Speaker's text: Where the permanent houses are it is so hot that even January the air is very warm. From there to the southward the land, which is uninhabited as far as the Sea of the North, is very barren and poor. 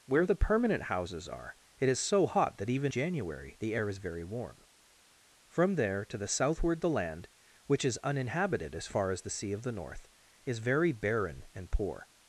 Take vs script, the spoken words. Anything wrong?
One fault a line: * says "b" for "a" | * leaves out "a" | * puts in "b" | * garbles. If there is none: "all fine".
all fine